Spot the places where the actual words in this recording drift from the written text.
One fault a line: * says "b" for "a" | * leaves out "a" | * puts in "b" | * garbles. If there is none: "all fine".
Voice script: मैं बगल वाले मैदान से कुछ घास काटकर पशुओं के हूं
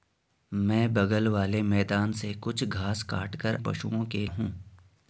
all fine